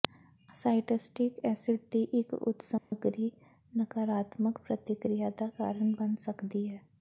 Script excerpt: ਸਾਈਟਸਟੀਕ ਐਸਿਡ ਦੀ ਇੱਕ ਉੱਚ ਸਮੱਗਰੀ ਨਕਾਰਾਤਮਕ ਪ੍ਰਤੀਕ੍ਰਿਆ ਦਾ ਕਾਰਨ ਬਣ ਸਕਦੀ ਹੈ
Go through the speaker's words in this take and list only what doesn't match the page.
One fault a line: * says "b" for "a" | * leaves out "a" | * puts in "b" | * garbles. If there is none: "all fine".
all fine